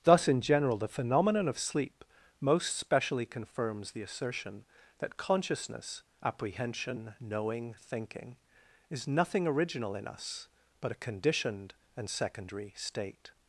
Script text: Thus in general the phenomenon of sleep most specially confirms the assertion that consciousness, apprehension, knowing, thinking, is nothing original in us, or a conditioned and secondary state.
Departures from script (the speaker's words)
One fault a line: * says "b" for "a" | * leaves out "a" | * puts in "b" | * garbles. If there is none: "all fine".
* says "but" for "or"